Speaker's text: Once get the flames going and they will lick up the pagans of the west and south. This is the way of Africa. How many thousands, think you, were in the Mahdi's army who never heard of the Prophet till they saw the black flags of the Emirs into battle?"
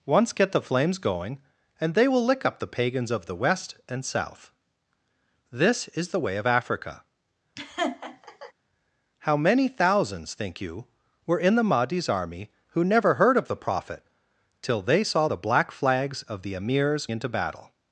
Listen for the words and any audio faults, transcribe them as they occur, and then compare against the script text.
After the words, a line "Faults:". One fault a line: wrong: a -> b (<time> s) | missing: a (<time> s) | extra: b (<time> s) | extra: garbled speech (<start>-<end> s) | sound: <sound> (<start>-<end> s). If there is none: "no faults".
Once get the flames going and they will lick up the pagans of the west and south. This is the way of Africa. How many thousands, think you, were in the Mahdi's army who never heard of the Prophet till they saw the black flags of the Emirs into battle?"
Faults:
sound: laugh (7.6-8.5 s)